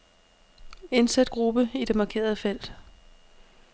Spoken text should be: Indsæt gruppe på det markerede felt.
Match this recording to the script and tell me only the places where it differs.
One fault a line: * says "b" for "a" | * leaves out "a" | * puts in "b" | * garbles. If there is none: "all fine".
* says "i" for "på"